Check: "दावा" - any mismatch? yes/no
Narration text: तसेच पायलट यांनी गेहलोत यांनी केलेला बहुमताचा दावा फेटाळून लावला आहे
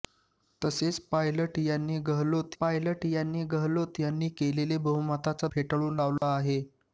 yes